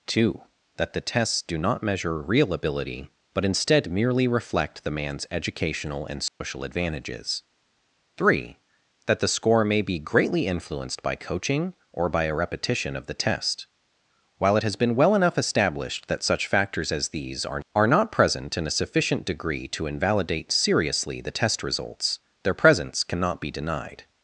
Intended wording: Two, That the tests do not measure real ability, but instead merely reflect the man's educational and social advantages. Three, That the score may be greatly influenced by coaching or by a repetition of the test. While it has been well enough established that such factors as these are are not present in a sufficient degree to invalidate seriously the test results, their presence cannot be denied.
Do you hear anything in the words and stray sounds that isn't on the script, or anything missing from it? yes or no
yes